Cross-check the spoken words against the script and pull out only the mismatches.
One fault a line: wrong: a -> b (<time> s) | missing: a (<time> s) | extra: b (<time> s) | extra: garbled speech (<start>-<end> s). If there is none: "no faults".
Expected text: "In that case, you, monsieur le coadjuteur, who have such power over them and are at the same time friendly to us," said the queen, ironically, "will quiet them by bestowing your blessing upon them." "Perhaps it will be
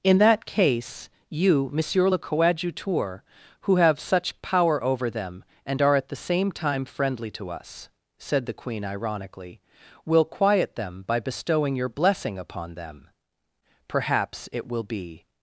no faults